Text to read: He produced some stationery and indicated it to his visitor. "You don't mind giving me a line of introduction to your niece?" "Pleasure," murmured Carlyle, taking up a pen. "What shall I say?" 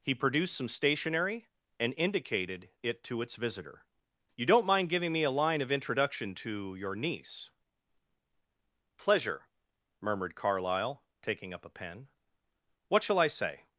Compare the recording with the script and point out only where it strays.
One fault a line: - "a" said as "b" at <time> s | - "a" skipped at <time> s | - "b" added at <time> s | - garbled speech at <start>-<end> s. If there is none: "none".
- "his" said as "its" at 3.2 s